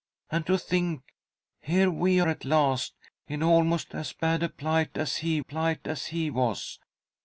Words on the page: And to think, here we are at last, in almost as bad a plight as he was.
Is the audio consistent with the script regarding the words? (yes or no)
no